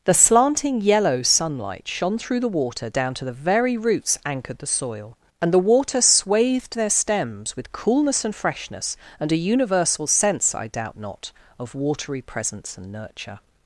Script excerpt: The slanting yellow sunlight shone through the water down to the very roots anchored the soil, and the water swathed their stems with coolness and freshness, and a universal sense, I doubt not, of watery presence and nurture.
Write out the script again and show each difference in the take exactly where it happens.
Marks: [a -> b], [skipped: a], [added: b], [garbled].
The slanting yellow sunlight shone through the water down to the very roots anchored the soil, and the water swathed their stems with coolness and freshness, and a universal sense, I doubt not, of watery presence and nurture.